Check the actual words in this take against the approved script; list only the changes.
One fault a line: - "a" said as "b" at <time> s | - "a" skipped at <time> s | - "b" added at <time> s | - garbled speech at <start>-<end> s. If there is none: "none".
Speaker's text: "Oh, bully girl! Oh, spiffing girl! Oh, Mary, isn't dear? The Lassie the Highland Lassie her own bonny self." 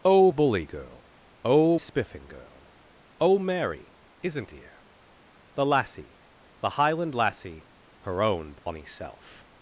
none